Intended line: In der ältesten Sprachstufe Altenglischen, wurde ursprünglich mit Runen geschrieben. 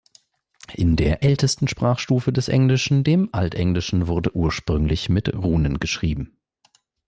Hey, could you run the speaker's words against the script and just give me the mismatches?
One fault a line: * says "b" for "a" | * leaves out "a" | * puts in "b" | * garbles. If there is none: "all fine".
* puts in "des Englischen dem"